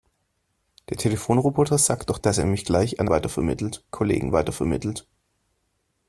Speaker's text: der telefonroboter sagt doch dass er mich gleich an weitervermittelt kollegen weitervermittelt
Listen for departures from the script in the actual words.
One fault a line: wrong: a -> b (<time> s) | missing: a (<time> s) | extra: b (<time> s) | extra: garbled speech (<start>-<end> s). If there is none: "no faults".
no faults